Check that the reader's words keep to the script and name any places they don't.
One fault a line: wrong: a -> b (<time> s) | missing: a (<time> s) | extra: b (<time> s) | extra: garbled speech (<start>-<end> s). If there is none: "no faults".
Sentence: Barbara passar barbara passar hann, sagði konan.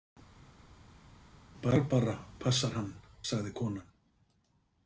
missing: barbara passar (2.7 s)